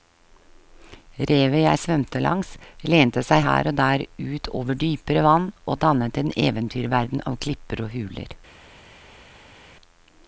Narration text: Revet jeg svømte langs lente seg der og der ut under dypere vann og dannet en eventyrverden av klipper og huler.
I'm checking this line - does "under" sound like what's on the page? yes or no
no